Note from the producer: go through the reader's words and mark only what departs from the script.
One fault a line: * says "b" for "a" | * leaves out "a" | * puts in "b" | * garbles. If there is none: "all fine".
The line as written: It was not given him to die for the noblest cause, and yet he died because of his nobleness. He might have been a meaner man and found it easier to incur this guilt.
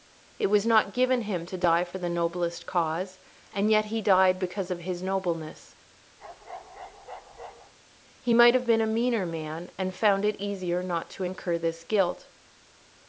* puts in "not"